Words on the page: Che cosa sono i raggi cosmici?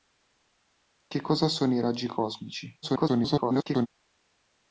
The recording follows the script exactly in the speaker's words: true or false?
false